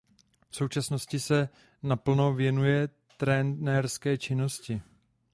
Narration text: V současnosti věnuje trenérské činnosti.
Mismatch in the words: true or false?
true